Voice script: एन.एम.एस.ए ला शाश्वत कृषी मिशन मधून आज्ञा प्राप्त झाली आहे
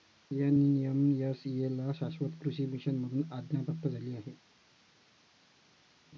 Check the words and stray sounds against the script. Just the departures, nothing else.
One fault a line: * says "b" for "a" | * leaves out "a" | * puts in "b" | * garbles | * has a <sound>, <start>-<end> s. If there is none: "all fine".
all fine